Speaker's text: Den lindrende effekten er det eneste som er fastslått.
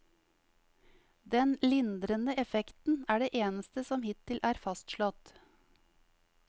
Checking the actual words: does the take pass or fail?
fail